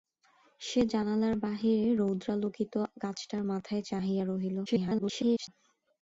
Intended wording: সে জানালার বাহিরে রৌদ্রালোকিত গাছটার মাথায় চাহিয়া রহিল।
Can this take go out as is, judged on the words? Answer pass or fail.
fail